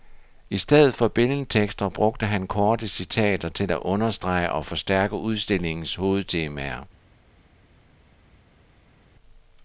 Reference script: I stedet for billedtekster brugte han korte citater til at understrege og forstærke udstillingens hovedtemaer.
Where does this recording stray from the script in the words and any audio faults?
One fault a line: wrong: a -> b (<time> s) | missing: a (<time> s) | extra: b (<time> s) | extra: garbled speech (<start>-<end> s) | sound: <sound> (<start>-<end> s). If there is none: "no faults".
no faults